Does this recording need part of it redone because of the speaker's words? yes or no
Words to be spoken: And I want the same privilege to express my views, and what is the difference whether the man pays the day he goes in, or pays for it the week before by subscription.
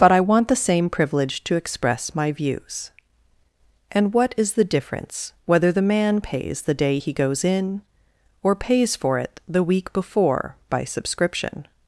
yes